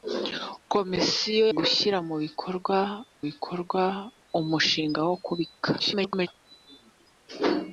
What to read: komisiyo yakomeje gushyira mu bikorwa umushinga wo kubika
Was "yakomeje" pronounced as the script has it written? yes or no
no